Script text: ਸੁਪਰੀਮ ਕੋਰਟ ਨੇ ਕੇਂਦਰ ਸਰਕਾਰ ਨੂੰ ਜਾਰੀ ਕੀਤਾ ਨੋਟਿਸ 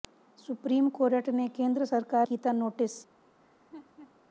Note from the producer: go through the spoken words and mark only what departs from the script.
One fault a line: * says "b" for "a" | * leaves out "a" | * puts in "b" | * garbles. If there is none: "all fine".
* leaves out "ਨੂੰ ਜਾਰੀ"